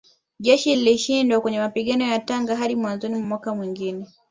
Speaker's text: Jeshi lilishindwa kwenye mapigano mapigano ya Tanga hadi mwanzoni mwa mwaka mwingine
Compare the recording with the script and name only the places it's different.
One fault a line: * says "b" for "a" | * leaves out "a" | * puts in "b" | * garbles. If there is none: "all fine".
* leaves out "mapigano"